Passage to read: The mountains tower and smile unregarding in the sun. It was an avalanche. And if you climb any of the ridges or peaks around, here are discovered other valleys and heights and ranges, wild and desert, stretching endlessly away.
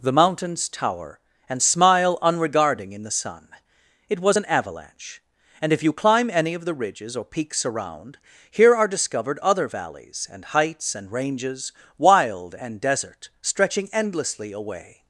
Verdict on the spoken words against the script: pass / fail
pass